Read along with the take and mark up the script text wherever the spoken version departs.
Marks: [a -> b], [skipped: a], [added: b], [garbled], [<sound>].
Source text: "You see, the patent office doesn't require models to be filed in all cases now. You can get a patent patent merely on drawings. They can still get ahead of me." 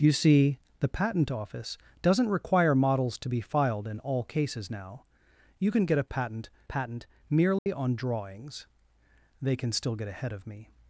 "You see, the patent office doesn't require models to be filed in all cases now. You can get a patent patent merely [dropout] on drawings. They can still get ahead of me."